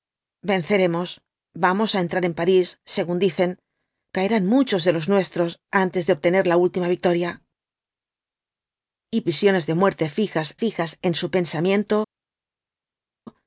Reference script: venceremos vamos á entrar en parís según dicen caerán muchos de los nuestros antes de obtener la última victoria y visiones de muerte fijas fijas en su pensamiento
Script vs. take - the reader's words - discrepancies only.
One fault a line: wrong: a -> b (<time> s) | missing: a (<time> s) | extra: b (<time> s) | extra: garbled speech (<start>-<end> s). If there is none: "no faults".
no faults